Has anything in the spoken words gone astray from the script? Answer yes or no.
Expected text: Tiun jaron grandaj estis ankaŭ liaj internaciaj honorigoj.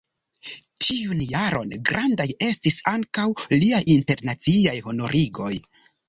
no